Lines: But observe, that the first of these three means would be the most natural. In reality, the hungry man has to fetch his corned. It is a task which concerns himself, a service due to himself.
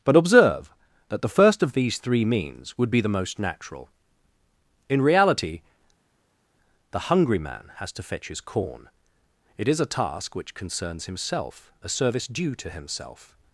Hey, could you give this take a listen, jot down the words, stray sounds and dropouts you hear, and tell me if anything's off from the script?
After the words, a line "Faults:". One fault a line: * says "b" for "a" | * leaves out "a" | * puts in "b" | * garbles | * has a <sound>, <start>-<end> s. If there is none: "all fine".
But observe, that the first of these three means would be the most natural. In reality, the hungry man has to fetch his corn. It is a task which concerns himself, a service due to himself.
Faults:
* says "corn" for "corned"